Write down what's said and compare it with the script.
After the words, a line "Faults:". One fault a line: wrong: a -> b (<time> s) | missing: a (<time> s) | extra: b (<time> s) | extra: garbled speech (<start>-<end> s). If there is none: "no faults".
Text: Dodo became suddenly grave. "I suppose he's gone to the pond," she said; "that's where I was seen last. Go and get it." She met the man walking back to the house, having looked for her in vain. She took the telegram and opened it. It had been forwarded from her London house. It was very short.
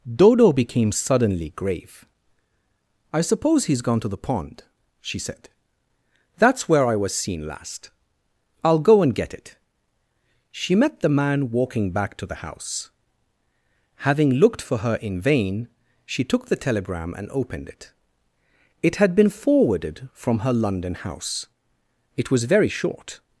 Dodo became suddenly grave. "I suppose he's gone to the pond," she said; "that's where I was seen last. I'll go and get it." She met the man walking back to the house, having looked for her in vain. She took the telegram and opened it. It had been forwarded from her London house. It was very short.
Faults:
extra: I'll (8.6 s)